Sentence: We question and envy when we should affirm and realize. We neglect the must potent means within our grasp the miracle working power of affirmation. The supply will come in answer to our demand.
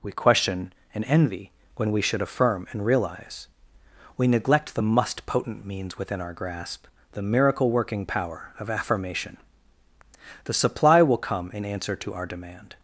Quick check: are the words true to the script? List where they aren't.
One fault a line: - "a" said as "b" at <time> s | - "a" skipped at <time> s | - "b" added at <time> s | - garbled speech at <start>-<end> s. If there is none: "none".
none